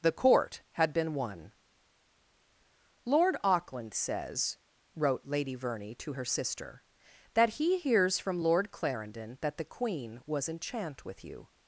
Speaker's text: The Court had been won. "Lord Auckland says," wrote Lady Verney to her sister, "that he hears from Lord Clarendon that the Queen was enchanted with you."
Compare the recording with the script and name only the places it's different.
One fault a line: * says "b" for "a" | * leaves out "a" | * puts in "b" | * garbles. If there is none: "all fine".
* says "enchant" for "enchanted"